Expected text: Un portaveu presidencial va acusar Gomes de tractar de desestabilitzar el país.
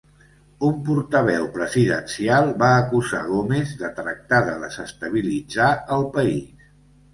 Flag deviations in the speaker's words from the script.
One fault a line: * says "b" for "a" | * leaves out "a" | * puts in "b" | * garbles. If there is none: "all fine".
all fine